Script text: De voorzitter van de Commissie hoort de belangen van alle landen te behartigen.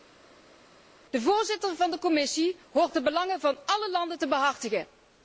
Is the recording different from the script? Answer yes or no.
no